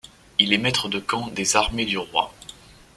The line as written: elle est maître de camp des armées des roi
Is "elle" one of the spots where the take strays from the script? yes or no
yes